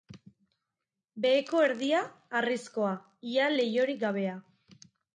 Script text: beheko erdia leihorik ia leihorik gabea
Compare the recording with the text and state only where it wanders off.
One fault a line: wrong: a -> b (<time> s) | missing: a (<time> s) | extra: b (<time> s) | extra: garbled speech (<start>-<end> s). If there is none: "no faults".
wrong: leihorik -> harrizkoa (2.4 s)